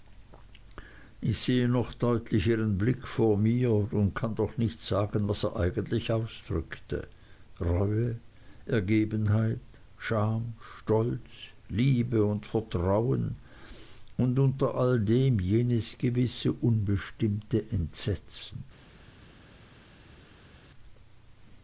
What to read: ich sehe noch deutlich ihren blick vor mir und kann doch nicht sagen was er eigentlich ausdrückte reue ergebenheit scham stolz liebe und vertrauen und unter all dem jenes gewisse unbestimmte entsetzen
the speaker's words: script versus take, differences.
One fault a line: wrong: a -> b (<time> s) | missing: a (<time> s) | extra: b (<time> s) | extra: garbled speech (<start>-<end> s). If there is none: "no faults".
no faults